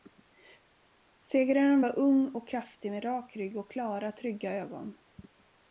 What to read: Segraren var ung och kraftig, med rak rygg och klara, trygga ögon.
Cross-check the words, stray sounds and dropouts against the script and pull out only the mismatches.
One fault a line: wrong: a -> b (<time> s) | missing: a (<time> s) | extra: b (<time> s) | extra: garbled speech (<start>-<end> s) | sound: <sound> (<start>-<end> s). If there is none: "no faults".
no faults